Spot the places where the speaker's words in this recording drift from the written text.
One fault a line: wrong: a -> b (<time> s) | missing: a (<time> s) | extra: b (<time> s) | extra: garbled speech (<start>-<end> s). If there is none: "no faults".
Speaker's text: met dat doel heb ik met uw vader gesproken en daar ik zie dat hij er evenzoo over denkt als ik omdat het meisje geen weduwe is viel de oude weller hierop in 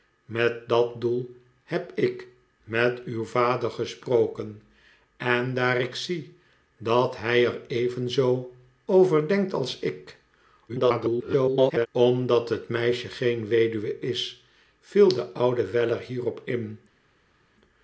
extra: garbled speech (10.7-11.9 s)